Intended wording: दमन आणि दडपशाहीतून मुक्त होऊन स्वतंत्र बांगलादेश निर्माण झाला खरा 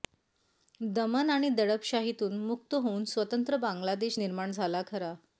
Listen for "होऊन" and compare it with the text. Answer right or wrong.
right